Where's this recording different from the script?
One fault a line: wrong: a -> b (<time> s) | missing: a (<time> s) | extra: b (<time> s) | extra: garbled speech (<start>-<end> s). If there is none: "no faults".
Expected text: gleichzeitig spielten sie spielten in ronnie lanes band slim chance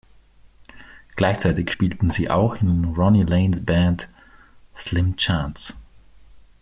wrong: spielten -> auch (2.3 s)